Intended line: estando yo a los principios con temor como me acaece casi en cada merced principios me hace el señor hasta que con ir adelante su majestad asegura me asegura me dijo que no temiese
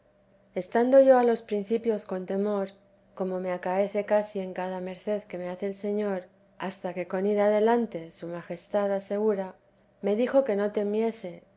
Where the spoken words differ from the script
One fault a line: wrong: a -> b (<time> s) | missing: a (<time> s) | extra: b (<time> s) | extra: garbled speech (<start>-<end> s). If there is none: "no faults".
wrong: principios -> que (5.2 s)
missing: asegura me (10.1 s)